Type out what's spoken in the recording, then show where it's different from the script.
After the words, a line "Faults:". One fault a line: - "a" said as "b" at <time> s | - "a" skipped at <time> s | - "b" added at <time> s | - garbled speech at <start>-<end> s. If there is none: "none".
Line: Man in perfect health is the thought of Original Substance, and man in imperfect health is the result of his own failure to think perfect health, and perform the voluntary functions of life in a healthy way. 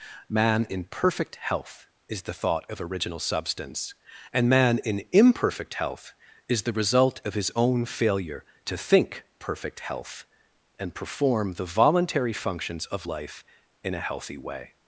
Man in perfect health is the thought of Original Substance, and man in imperfect health is the result of his own failure to think perfect health, and perform the voluntary functions of life in a healthy way.
Faults:
none